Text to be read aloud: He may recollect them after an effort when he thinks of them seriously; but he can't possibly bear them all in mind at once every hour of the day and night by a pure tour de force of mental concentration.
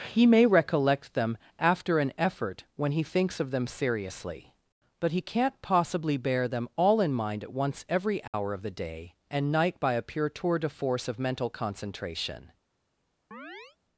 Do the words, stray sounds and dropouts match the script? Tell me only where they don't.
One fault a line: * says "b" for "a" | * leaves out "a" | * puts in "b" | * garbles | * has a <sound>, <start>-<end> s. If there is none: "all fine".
* has a dropout, 8.3-8.3 s
* has a chirp, 13.3-13.8 s